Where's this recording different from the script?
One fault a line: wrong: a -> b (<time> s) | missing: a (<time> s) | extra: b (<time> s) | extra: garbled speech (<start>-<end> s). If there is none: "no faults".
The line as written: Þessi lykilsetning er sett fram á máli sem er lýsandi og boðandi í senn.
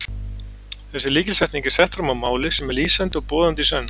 no faults